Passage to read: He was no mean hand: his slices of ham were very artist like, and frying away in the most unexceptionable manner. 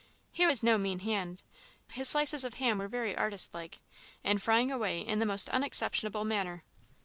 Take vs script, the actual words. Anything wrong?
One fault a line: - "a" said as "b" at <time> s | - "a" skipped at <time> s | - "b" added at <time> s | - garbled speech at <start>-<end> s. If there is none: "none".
none